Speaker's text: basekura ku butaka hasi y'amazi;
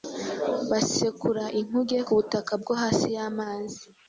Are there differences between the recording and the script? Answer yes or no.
yes